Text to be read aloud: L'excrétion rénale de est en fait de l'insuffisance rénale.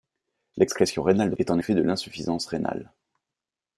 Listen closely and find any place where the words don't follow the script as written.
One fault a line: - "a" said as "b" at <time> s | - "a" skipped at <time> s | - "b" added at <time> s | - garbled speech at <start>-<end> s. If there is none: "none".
none